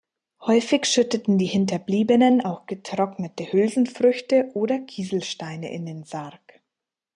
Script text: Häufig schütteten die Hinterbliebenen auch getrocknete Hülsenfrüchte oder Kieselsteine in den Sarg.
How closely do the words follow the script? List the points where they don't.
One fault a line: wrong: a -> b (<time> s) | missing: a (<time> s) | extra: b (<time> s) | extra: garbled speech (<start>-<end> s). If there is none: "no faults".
no faults